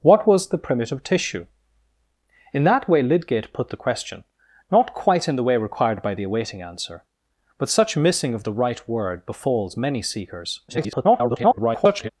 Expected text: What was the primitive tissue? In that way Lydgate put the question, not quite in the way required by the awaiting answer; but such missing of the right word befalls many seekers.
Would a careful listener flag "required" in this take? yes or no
no